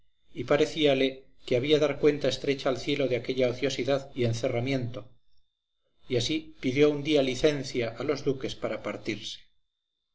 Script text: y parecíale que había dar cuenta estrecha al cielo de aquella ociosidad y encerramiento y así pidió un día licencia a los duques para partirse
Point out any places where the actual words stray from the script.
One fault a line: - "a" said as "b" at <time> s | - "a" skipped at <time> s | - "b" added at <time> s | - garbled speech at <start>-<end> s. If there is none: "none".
none